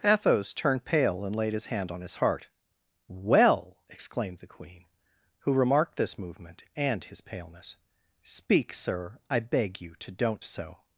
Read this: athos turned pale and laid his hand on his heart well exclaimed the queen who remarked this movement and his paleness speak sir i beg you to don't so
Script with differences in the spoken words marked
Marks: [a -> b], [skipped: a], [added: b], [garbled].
athos turned pale and laid his hand on his heart well exclaimed the queen who remarked this movement and his paleness speak sir i beg you to don't so